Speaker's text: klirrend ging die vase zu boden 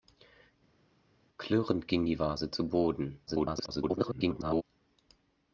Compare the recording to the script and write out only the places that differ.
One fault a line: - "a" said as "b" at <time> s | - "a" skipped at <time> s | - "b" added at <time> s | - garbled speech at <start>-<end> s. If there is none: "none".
- garbled speech at 3.3-4.6 s